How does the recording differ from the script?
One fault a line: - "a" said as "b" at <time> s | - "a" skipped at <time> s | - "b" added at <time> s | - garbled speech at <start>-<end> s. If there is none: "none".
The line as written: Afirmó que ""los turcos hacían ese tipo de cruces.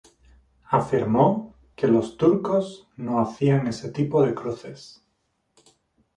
- "no" added at 2.9 s